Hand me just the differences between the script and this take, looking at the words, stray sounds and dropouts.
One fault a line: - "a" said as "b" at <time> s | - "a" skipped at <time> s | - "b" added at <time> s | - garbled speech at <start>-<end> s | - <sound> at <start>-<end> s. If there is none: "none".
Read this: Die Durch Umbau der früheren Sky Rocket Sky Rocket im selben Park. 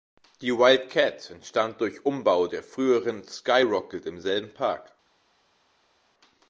- "Wildcat entstand" added at 0.6 s
- "Sky Rocket" skipped at 4.0 s